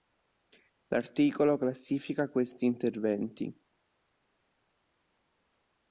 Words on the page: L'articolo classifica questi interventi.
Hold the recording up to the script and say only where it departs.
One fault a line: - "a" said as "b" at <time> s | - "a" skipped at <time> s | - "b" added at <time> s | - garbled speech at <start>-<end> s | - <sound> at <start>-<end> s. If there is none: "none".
none